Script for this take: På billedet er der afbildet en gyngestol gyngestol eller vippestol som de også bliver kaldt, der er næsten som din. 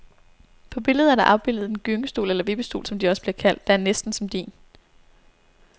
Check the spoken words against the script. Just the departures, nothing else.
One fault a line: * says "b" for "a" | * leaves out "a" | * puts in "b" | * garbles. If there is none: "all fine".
* leaves out "gyngestol"